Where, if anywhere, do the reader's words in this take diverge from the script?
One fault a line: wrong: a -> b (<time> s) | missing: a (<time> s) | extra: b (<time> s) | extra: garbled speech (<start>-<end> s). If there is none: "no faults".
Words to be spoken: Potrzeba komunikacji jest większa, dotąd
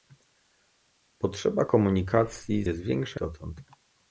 no faults